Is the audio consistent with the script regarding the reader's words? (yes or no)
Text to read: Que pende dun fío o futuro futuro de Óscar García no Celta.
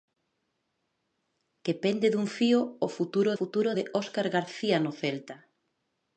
yes